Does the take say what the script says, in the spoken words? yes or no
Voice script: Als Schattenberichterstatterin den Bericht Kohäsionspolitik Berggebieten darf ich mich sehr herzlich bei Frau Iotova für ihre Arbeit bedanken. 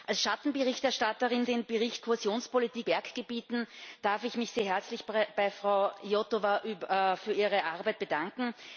yes